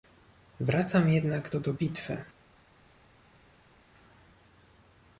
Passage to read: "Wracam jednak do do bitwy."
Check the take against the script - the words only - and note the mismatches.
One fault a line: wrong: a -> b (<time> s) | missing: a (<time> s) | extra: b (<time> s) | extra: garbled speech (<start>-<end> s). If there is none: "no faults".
no faults